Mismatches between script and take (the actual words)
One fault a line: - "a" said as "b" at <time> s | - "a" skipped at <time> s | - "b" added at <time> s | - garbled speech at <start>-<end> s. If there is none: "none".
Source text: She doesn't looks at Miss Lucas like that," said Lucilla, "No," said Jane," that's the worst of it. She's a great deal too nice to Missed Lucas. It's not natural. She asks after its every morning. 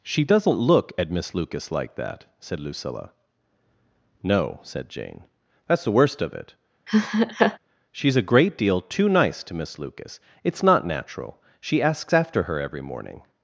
- "looks" said as "look" at 0.5 s
- "Missed" said as "Miss" at 9.5 s
- "its" said as "her" at 12.4 s